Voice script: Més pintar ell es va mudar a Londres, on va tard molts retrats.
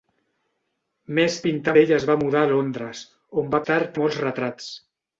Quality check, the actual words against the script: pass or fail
pass